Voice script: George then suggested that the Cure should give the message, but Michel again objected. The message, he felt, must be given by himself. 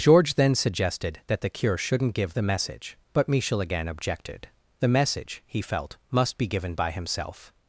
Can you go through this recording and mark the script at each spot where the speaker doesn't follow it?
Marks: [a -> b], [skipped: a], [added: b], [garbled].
George then suggested that the Cure [should -> shouldn't] give the message, but Michel again objected. The message, he felt, must be given by himself.